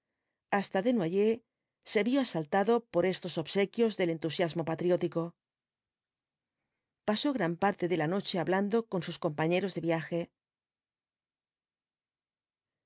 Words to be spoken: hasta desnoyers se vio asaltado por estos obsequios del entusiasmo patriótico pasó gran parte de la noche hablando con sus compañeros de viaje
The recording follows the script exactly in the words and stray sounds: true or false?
true